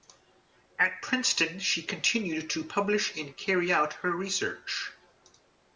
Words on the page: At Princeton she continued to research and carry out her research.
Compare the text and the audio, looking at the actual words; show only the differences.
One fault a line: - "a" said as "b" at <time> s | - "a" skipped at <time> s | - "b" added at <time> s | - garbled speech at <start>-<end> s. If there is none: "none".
- "research" said as "publish" at 2.6 s